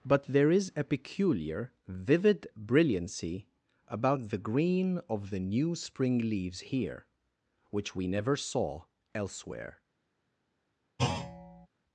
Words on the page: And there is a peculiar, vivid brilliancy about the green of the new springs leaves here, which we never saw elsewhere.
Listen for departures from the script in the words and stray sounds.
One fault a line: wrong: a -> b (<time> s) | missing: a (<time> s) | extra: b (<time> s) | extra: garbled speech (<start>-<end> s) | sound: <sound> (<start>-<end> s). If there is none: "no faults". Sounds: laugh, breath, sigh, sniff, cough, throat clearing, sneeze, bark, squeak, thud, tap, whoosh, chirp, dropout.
wrong: And -> But (0.0 s)
wrong: springs -> spring (5.7 s)
sound: thud (11.0-11.7 s)